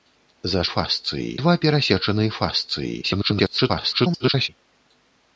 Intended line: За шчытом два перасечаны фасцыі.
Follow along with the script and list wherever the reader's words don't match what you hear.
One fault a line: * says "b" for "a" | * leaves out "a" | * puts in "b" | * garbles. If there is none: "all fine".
* says "фасцыі" for "шчытом"
* garbles